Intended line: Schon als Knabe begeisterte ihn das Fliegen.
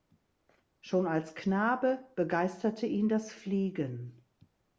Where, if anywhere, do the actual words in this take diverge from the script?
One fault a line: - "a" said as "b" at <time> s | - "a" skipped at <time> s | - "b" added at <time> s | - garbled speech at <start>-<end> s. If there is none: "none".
none